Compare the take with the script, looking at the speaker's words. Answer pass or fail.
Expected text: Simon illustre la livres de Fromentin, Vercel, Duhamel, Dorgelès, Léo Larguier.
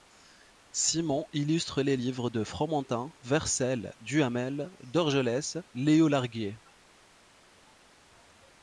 fail